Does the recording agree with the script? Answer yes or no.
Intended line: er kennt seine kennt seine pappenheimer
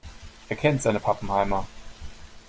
no